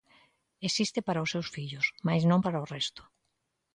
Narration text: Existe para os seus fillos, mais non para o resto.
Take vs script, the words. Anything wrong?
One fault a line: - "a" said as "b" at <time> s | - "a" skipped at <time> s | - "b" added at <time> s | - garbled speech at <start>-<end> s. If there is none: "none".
none